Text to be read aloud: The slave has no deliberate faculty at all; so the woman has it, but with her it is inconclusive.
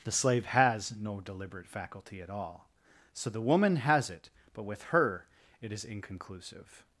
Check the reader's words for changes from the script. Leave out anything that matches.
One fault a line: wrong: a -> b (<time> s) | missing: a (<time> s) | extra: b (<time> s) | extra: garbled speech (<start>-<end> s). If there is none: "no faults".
no faults